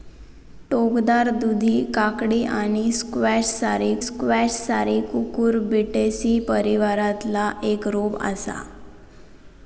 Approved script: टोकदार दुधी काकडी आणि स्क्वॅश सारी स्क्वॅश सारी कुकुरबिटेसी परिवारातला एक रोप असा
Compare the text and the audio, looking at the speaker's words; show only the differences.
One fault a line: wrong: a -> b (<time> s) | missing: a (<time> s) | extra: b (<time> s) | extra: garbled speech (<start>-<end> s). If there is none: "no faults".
no faults